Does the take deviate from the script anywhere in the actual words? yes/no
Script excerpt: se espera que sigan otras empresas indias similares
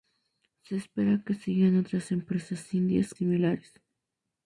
no